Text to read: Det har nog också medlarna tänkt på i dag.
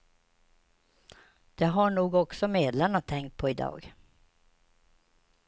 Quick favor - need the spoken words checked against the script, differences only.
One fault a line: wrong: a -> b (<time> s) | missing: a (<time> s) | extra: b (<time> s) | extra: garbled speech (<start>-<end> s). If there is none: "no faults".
no faults